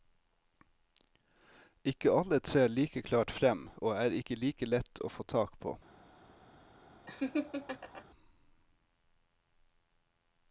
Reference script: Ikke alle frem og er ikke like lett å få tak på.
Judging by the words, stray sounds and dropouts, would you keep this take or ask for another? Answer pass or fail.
fail